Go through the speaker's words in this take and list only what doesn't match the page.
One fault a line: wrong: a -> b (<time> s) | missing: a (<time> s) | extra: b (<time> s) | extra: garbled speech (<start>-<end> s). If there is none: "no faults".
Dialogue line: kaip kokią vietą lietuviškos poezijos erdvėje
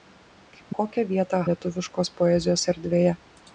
no faults